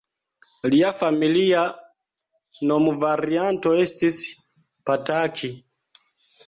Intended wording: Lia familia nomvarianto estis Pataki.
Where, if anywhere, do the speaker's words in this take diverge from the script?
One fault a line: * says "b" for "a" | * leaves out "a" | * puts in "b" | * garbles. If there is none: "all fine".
all fine